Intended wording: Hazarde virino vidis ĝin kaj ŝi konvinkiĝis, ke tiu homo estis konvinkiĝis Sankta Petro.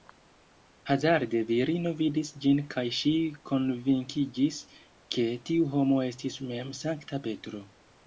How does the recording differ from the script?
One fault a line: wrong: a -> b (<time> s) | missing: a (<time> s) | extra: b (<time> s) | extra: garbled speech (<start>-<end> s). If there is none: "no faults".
wrong: konvinkiĝis -> mem (6.5 s)